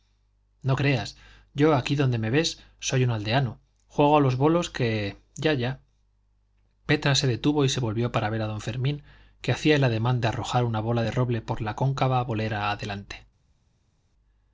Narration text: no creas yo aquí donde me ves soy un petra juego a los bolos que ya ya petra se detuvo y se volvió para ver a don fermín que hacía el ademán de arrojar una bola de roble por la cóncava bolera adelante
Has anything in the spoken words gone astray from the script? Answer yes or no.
yes